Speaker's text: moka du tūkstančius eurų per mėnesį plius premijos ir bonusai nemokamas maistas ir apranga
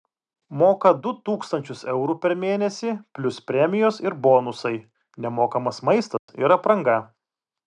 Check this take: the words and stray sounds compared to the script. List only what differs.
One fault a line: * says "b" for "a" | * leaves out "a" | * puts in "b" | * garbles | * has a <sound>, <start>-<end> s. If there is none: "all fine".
* has a dropout, 6.2-6.3 s